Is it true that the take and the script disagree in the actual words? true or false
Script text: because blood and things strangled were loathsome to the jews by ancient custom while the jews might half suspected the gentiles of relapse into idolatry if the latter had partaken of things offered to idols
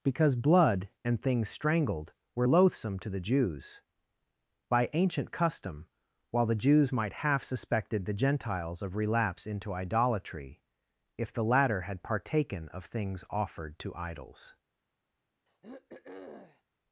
false